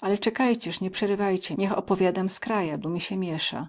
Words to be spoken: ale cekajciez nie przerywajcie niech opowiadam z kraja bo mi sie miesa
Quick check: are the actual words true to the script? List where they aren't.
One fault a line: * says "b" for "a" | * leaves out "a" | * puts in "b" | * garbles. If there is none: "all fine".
all fine